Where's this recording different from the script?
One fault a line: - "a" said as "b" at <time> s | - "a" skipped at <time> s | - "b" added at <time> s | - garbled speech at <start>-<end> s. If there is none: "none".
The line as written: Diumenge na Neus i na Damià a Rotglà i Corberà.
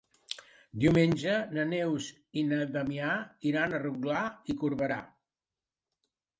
- "iran" added at 3.5 s